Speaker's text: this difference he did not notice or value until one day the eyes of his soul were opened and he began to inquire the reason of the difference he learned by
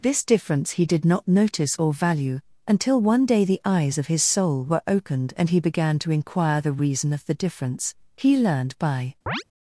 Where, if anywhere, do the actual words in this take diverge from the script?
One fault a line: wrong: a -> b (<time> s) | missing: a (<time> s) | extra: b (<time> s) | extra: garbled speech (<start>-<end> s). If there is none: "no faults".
no faults